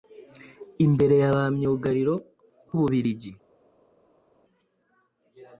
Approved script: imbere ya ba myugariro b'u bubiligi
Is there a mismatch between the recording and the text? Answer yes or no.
yes